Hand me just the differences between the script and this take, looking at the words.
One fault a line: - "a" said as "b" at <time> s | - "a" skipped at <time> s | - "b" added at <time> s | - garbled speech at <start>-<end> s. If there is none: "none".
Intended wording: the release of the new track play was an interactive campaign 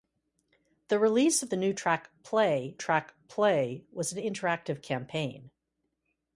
- "track play" added at 2.8 s